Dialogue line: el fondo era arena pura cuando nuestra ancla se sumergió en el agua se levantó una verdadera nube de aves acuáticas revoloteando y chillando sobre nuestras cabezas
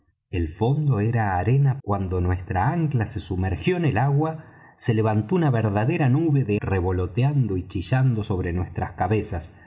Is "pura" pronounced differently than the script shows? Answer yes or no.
yes